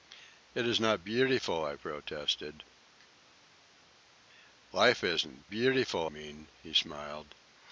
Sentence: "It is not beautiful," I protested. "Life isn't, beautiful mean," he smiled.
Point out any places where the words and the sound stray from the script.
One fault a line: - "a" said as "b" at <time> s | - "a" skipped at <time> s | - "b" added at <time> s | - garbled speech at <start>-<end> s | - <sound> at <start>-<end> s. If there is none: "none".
none